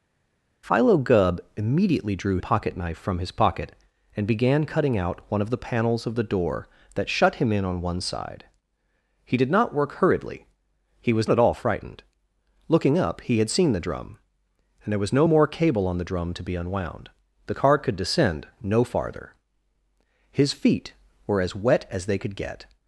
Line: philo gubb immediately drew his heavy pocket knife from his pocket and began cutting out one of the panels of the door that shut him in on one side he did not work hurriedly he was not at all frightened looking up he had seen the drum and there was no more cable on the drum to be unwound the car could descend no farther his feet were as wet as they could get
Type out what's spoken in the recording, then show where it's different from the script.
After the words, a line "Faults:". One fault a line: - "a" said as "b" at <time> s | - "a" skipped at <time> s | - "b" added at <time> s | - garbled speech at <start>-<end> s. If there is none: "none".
philo gubb immediately drew pocket knife from his pocket and began cutting out one of the panels of the door that shut him in on one side he did not work hurriedly he was at all frightened looking up he had seen the drum and there was no more cable on the drum to be unwound the car could descend no farther his feet were as wet as they could get
Faults:
- "his heavy" skipped at 2.4 s
- "not" skipped at 11.3 s